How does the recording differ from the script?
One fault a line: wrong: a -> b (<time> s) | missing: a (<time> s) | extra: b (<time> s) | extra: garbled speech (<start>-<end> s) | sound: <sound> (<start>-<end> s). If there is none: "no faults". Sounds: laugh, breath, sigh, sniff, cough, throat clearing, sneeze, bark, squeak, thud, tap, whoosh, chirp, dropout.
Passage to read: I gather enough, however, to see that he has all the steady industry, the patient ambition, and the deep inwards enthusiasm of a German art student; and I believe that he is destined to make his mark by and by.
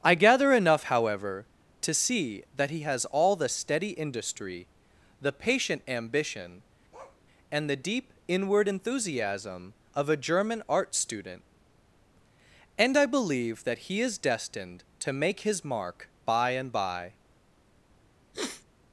sound: bark (6.9-7.2 s)
wrong: inwards -> inward (8.3 s)
sound: sniff (18.3-18.6 s)